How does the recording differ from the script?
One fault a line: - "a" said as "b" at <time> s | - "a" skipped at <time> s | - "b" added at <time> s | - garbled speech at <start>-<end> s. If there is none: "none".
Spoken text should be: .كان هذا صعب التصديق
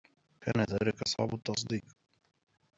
- "هذا" said as "ذلك" at 0.7 s